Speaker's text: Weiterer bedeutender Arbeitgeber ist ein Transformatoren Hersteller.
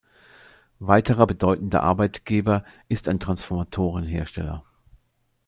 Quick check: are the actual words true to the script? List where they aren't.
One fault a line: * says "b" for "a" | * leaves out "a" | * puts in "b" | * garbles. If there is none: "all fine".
all fine